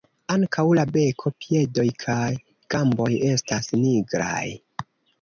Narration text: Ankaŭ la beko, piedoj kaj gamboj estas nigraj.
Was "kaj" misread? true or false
false